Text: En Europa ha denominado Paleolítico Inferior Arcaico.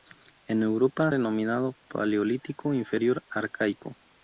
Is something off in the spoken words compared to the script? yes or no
no